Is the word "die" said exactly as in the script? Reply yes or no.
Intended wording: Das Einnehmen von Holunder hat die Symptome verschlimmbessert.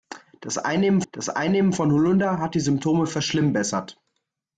yes